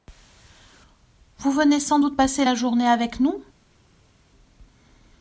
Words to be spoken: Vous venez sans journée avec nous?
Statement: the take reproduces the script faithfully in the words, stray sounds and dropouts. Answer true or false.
false